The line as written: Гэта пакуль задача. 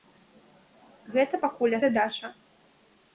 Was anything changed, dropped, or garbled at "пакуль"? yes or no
no